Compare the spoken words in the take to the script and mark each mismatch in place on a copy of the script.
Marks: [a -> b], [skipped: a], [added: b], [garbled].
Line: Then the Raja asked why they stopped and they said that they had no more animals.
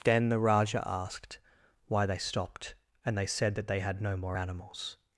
Then the Raja asked why they stopped and they said that they had no more animals.